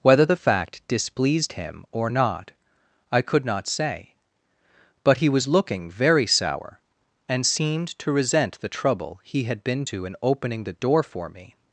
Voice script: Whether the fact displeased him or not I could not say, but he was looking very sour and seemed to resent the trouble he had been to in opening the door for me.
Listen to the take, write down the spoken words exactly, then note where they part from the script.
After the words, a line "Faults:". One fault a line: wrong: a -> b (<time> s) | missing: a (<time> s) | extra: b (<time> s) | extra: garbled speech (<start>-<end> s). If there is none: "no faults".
Whether the fact displeased him or not I could not say, but he was looking very sour and seemed to resent the trouble he had been to in opening the door for me.
Faults:
no faults